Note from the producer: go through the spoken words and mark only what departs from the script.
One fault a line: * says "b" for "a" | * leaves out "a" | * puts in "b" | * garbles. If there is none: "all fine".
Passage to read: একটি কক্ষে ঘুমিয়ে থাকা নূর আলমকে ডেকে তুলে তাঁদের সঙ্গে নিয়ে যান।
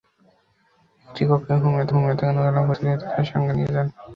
* puts in "ঘুমিয়ে"
* leaves out "ডেকে"